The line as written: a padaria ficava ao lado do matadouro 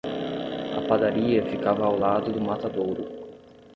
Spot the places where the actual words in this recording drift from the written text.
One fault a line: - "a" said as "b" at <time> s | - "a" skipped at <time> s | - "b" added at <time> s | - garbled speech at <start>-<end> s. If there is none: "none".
none